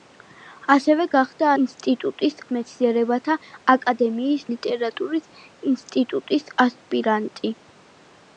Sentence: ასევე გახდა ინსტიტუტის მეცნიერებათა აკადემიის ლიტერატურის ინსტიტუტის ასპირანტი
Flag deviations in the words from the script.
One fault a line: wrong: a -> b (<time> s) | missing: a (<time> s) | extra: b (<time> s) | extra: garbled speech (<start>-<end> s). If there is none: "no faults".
no faults